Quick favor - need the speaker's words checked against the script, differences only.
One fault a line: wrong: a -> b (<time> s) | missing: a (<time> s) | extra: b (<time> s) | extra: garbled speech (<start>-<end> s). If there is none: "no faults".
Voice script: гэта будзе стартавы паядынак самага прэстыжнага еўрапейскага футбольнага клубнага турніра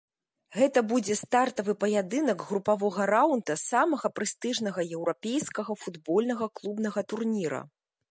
extra: групавога раўнда (2.5 s)